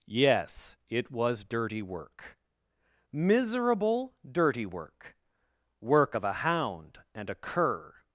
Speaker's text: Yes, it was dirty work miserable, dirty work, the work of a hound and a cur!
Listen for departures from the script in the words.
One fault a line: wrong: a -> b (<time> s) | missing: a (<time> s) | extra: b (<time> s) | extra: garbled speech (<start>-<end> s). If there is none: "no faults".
missing: the (5.2 s)